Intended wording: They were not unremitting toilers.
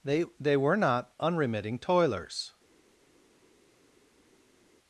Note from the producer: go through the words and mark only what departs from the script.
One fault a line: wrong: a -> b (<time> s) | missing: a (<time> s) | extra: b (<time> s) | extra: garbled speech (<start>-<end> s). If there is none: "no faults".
extra: they (0.4 s)